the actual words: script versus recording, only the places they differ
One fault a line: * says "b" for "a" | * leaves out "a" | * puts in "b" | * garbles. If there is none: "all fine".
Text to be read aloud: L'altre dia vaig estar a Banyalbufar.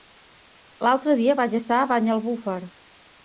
all fine